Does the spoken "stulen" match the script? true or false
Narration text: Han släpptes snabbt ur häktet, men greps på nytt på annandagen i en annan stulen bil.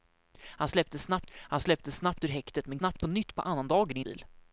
false